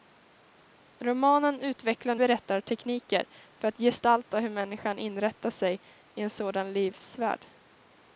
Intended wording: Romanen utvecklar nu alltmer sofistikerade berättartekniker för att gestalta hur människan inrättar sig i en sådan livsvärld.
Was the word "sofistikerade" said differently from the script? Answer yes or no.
yes